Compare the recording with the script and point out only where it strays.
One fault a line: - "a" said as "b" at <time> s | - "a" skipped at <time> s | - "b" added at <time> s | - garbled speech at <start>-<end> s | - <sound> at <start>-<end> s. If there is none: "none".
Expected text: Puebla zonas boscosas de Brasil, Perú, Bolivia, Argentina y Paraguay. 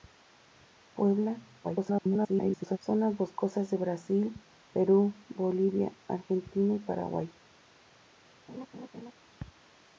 - garbled speech at 1.6-2.8 s
- laugh at 8.5-9.1 s